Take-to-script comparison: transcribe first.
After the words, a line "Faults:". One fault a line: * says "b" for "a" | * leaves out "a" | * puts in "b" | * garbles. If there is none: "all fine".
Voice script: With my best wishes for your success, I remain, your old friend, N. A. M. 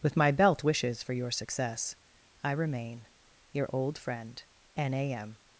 With my belt wishes for your success, I remain, your old friend, N. A. M.
Faults:
* says "belt" for "best"